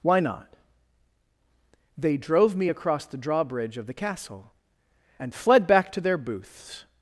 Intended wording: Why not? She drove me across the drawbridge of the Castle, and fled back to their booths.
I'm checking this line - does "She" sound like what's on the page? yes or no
no